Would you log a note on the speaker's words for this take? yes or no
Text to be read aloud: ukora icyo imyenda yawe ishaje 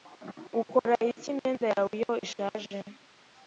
yes